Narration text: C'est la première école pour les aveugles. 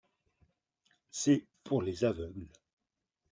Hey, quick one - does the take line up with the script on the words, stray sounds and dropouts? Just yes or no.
no